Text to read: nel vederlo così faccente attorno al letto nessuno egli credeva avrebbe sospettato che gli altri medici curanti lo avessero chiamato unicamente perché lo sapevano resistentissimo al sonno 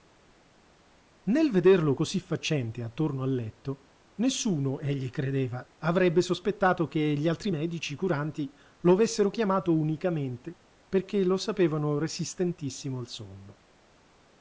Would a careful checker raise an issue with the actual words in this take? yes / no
no